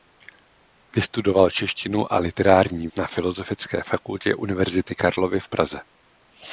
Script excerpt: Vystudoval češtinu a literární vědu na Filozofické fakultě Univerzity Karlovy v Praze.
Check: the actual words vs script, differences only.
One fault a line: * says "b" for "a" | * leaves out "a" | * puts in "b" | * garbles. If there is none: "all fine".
* leaves out "vědu"